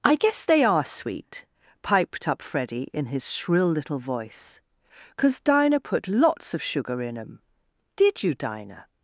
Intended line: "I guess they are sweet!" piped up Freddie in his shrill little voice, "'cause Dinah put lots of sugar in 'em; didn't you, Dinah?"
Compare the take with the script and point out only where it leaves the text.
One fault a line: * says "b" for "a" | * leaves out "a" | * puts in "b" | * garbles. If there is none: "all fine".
* says "did" for "didn't"